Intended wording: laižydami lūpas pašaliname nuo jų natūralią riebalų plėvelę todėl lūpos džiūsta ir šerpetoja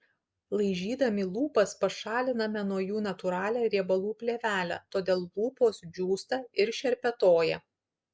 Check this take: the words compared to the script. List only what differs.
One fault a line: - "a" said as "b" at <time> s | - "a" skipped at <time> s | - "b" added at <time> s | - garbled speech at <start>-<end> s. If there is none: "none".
none